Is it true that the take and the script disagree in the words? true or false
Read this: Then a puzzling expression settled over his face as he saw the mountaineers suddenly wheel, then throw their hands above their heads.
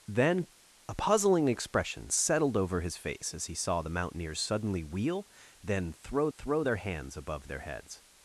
true